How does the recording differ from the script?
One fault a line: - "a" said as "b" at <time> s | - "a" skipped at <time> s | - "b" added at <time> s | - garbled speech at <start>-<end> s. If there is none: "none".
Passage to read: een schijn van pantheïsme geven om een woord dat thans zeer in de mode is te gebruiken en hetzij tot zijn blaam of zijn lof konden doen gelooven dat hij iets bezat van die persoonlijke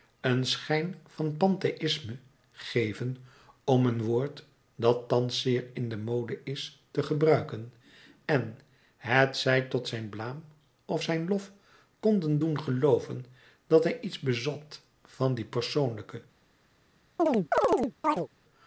none